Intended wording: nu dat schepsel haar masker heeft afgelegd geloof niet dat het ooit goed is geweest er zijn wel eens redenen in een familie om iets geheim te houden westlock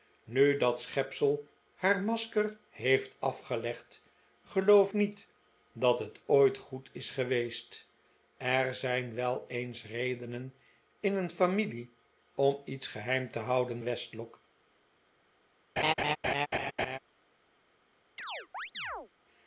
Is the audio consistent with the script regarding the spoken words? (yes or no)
yes